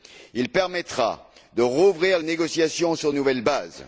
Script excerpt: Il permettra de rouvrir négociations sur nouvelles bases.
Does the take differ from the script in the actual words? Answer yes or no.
no